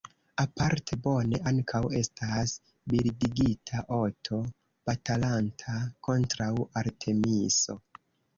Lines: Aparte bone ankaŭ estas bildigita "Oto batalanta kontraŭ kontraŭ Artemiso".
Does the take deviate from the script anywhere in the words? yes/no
yes